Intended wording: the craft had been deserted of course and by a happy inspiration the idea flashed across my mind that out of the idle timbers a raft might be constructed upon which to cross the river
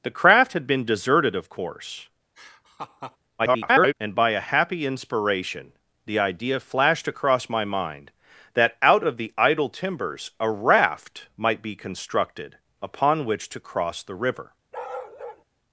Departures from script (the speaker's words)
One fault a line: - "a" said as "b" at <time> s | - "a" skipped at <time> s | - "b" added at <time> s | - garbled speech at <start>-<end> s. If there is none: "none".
- garbled speech at 3.4-3.9 s